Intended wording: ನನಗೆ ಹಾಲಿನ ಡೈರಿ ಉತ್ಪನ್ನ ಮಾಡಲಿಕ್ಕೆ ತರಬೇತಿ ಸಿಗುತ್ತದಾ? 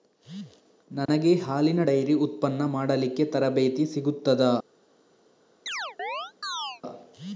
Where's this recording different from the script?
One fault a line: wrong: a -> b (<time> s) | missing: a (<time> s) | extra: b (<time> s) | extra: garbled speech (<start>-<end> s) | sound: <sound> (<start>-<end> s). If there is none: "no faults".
sound: dropout (1.1-1.1 s)
sound: chirp (5.7-6.8 s)